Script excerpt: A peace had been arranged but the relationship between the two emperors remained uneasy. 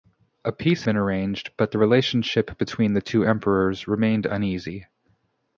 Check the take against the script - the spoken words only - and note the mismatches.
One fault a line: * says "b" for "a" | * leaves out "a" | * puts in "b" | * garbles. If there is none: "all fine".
* leaves out "had"